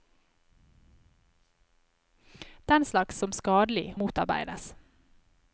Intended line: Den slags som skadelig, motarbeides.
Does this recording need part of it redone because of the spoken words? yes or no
no